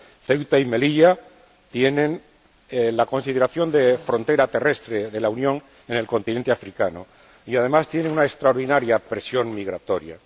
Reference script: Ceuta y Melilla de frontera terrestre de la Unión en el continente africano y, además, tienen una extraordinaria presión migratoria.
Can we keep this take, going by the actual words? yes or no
no